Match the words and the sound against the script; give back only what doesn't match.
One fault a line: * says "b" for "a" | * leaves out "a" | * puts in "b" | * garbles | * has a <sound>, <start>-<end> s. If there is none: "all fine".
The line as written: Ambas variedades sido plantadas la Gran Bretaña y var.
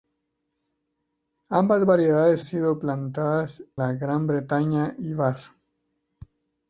all fine